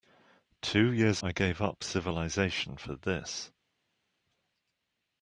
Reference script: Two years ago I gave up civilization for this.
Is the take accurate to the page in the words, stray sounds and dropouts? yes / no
no